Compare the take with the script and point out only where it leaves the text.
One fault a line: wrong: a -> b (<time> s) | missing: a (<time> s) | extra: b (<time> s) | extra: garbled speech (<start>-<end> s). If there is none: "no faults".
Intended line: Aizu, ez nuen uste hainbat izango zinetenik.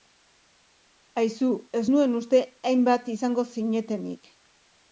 no faults